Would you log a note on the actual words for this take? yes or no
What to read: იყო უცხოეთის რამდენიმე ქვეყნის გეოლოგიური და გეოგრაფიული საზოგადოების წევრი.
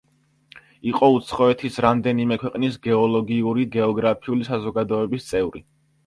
yes